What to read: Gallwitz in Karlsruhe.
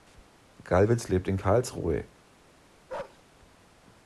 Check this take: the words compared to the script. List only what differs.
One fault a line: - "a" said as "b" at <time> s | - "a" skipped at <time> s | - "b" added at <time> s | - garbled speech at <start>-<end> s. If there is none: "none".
- "lebt" added at 1.1 s